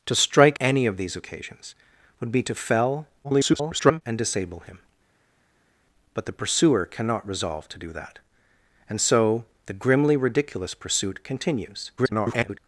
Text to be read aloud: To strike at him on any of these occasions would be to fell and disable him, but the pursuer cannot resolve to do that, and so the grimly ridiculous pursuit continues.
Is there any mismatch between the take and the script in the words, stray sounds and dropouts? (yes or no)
yes